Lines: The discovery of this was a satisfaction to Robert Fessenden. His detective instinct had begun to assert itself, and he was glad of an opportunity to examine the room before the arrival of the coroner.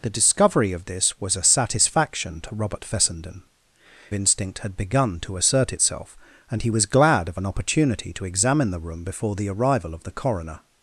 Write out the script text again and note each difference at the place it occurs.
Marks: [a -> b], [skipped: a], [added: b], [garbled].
The discovery of this was a satisfaction to Robert Fessenden. [skipped: His detective] instinct had begun to assert itself, and he was glad of an opportunity to examine the room before the arrival of the coroner.